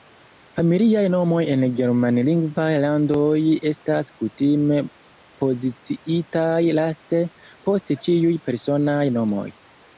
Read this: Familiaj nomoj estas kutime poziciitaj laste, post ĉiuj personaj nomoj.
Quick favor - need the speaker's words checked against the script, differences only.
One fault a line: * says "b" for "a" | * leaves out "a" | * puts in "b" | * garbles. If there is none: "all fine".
* puts in "en Germanlingvaj landoj"